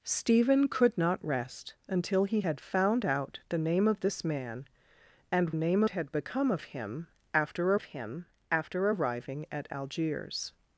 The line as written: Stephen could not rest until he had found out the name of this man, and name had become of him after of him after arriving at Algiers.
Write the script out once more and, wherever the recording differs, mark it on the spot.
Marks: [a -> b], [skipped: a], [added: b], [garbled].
Stephen could not rest until he had found out the name of this man, and name had become of him after of him after arriving at Algiers.